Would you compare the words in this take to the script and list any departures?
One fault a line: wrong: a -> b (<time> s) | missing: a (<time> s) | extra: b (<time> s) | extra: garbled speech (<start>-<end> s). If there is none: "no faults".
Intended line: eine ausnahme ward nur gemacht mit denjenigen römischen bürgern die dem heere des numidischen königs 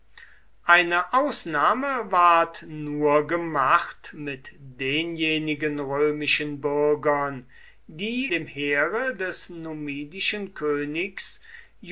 no faults